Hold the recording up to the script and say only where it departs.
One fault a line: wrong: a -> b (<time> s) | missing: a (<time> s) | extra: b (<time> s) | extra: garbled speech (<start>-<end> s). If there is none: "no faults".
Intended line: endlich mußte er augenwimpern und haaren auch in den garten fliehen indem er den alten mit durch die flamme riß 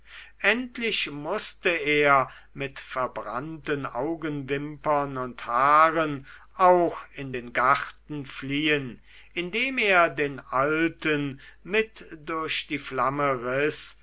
extra: mit verbrannten (2.5 s)